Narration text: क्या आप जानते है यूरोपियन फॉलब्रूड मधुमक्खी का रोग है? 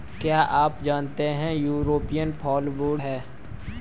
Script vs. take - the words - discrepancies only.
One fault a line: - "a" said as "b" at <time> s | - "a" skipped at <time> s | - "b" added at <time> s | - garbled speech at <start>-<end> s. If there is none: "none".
- "मधुमक्खी का रोग" skipped at 3.0 s